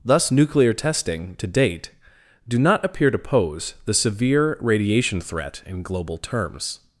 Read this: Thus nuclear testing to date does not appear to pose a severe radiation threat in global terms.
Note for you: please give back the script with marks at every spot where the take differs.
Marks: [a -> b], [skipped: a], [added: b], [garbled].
Thus nuclear testing to date [does -> do] not appear to pose [a -> the] severe radiation threat in global terms.